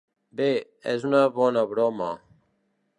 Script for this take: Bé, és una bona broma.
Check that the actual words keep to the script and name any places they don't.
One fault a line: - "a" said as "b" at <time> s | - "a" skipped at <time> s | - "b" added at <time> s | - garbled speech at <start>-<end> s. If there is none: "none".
none